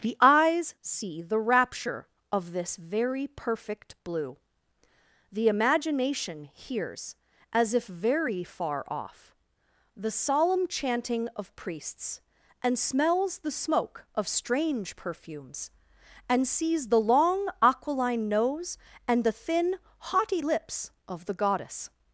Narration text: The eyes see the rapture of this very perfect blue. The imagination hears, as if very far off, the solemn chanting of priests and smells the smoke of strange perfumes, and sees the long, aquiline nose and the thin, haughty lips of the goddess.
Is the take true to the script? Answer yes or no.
yes